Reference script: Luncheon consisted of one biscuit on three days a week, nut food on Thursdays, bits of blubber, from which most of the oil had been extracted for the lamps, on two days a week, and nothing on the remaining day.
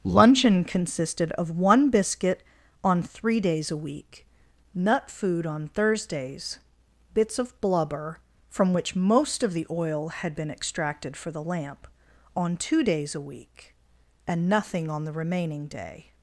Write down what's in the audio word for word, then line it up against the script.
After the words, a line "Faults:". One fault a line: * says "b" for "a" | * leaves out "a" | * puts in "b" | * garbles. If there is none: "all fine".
Luncheon consisted of one biscuit on three days a week, nut food on Thursdays, bits of blubber, from which most of the oil had been extracted for the lamp, on two days a week, and nothing on the remaining day.
Faults:
* says "lamp" for "lamps"